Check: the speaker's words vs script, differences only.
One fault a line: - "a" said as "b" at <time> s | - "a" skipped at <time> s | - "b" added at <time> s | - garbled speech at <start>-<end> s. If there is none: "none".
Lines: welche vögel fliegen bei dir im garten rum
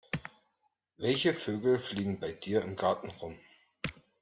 none